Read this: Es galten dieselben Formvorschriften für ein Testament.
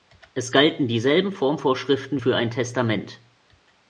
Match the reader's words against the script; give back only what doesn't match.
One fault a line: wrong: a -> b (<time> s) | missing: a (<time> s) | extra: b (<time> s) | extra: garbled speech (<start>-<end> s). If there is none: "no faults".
no faults